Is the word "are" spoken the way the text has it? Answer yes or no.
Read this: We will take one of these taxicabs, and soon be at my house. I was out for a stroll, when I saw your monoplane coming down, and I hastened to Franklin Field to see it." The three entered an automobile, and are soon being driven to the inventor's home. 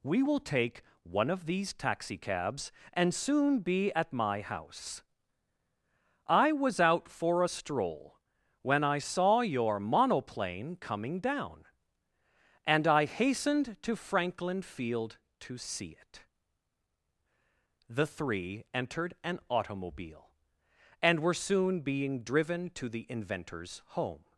no